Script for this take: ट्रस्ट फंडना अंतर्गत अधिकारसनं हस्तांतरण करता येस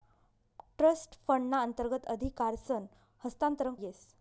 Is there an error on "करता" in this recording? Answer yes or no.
yes